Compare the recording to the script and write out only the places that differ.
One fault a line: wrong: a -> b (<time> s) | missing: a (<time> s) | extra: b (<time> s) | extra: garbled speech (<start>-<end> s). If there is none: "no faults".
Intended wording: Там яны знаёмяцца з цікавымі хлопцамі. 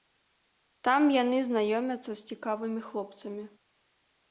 no faults